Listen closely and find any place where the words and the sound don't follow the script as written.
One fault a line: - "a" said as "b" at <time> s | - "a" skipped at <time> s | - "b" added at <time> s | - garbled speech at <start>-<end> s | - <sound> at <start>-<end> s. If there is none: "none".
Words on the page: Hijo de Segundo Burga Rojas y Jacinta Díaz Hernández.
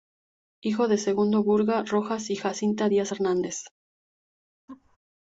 - laugh at 4.7-5.0 s